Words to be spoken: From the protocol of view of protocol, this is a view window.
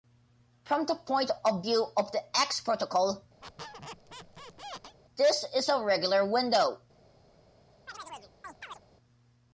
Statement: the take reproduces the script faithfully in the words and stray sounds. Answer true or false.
false